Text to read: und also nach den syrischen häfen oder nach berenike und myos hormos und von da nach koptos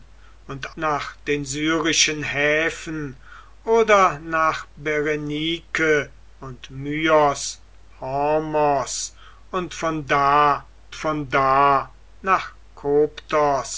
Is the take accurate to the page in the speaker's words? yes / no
no